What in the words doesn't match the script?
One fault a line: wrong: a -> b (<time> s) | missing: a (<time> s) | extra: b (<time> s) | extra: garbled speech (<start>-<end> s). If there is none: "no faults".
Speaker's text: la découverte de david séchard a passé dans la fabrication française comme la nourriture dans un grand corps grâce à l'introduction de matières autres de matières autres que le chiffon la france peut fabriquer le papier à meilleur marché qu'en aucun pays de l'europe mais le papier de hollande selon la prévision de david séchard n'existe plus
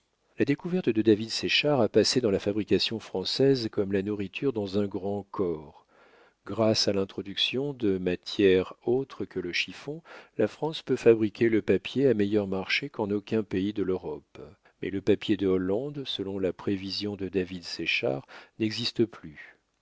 missing: de matières autres (9.2 s)